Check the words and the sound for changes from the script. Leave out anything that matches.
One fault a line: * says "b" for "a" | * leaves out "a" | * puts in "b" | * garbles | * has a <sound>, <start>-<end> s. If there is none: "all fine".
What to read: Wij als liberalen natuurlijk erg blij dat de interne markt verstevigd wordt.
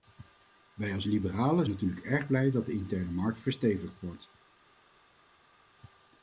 all fine